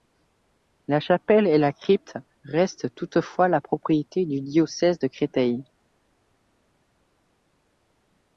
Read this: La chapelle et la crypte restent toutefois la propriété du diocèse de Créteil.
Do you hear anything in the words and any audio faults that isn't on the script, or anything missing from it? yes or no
no